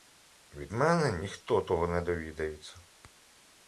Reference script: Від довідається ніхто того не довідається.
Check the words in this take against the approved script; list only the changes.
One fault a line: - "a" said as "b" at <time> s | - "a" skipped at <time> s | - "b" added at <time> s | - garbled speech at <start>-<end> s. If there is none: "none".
- "довідається" said as "мене" at 0.7 s